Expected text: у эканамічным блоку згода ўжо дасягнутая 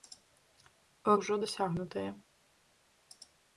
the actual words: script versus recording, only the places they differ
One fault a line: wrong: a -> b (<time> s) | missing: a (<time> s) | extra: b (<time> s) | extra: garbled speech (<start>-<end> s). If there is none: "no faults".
missing: эканамічным блоку згода (1.1 s)